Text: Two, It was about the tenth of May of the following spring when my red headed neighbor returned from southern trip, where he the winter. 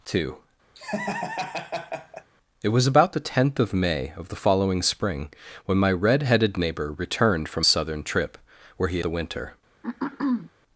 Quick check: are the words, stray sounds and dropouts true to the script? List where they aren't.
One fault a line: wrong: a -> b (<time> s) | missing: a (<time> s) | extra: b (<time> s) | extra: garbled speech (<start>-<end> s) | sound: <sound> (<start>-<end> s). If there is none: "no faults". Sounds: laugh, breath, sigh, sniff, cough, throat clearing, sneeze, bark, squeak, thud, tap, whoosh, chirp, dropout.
sound: laugh (0.7-2.3 s)
sound: throat clearing (9.8-10.5 s)